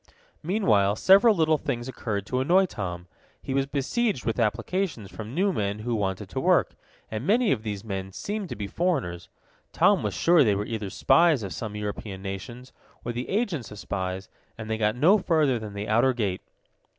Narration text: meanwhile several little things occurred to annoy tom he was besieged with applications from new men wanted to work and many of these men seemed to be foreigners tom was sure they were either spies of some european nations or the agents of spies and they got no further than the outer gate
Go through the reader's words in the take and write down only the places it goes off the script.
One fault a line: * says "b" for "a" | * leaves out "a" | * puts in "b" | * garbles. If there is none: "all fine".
* puts in "who"